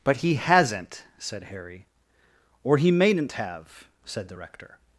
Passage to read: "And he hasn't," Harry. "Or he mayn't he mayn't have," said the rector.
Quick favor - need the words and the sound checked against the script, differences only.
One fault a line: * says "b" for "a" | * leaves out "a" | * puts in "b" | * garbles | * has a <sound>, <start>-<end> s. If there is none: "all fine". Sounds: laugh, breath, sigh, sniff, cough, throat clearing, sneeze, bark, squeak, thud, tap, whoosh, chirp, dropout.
* says "But" for "And"
* puts in "said"
* leaves out "he mayn't"